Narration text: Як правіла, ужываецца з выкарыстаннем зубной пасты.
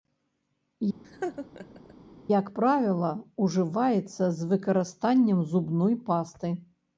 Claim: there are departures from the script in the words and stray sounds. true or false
true